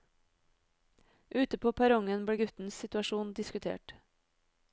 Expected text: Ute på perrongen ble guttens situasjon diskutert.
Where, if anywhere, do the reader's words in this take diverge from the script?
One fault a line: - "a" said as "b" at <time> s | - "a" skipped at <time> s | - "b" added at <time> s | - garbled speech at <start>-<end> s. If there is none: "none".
none